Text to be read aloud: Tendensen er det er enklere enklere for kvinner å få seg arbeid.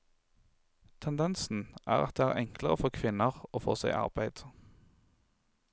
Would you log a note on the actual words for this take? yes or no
yes